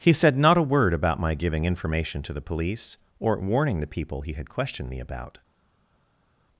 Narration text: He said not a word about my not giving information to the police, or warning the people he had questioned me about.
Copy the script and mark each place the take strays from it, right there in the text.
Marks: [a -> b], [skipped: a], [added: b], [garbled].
He said not a word about my [skipped: not] giving information to the police, or warning the people he had questioned me about.